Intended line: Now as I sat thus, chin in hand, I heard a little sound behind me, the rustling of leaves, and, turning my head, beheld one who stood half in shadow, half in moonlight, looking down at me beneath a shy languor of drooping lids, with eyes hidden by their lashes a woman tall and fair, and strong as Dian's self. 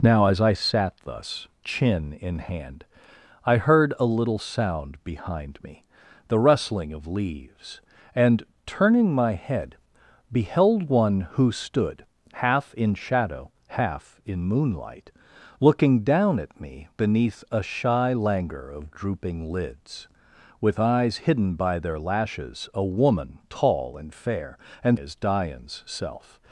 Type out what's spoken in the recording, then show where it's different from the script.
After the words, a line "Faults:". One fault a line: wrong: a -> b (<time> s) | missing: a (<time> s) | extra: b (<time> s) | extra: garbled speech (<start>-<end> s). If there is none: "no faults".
Now as I sat thus, chin in hand, I heard a little sound behind me, the rustling of leaves, and, turning my head, beheld one who stood half in shadow, half in moonlight, looking down at me beneath a shy languor of drooping lids, with eyes hidden by their lashes a woman tall and fair, and as Dian's self.
Faults:
missing: strong (25.0 s)